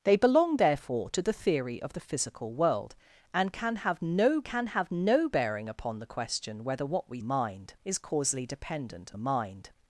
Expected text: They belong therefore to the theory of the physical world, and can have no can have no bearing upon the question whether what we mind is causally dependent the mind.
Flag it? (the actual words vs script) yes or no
no